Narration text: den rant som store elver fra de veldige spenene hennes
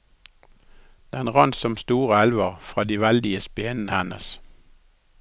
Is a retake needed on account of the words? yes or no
no